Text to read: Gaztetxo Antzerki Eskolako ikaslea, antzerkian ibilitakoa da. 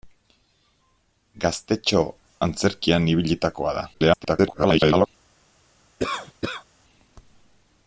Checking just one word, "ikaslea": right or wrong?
wrong